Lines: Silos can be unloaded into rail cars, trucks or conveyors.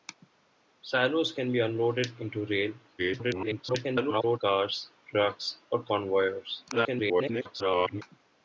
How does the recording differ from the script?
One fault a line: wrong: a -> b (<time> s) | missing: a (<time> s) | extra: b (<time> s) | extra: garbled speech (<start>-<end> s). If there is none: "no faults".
extra: garbled speech (3.0-4.4 s)
extra: garbled speech (6.7-8.0 s)